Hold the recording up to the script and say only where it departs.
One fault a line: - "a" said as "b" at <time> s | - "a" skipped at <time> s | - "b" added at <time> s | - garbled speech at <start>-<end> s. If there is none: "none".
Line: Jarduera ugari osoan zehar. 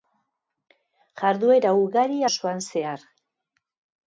none